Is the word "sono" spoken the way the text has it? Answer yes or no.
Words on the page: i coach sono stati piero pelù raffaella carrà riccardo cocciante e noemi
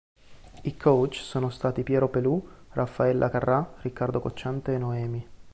yes